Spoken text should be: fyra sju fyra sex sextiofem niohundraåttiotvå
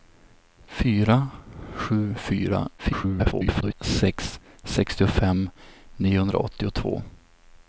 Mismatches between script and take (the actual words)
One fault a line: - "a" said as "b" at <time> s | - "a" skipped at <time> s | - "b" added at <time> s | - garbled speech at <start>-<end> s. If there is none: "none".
- garbled speech at 2.8-3.7 s